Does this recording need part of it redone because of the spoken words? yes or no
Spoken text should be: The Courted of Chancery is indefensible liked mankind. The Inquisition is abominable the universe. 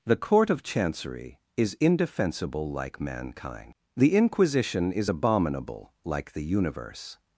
yes